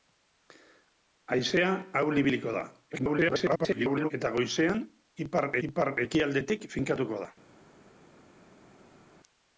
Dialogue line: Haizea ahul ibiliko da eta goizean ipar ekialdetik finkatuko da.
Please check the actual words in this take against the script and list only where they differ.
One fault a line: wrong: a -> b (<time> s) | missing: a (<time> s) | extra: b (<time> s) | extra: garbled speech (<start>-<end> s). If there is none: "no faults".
extra: garbled speech (2.9-4.1 s)
extra: ipar (5.7 s)